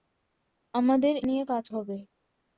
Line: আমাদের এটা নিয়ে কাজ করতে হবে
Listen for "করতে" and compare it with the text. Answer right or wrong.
wrong